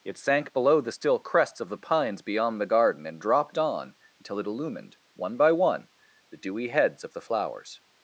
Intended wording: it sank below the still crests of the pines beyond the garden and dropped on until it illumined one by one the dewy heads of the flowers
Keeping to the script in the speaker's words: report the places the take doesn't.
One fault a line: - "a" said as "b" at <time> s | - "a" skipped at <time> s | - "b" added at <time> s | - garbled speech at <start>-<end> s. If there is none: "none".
none